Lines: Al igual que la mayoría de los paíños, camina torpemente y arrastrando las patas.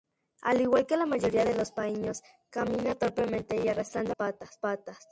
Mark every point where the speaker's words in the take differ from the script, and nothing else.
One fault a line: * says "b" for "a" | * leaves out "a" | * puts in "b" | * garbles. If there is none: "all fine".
* leaves out "las"